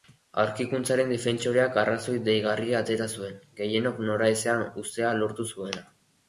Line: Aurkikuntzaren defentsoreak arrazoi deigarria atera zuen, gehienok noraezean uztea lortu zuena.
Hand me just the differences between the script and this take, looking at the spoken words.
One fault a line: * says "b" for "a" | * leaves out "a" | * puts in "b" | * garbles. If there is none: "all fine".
all fine